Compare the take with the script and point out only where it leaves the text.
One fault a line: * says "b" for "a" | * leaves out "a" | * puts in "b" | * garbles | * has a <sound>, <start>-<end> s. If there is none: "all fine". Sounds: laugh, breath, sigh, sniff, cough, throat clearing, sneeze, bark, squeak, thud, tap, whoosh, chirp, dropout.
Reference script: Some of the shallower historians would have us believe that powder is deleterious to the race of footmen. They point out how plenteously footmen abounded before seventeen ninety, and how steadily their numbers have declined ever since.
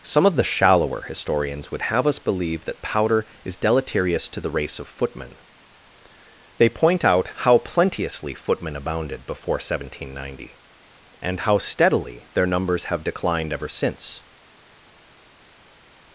all fine